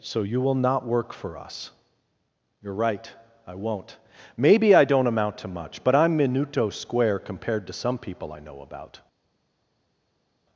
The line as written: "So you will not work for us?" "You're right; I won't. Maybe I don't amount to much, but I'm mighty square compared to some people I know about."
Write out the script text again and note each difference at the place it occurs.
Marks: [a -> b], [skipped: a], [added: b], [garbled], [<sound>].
"So you will not work for us?" "You're right; I won't. Maybe I don't amount to much, but I'm [mighty -> minuto] square compared to some people I know about."